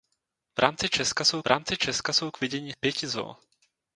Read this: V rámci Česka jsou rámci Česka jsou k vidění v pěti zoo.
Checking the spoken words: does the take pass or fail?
pass